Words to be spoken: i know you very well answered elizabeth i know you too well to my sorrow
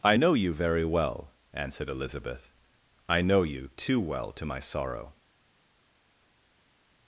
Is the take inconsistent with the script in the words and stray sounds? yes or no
no